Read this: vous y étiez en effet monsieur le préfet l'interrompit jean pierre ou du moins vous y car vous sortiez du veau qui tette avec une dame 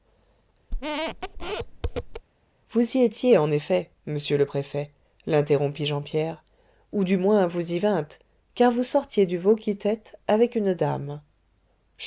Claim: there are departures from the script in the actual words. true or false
true